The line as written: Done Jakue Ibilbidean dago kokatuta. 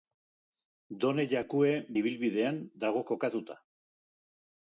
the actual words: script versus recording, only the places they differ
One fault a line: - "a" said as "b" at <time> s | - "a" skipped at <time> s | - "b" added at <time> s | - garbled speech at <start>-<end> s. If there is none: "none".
none